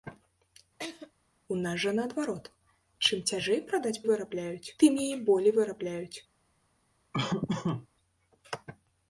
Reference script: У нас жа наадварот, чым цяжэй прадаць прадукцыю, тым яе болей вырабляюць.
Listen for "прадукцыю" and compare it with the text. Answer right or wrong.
wrong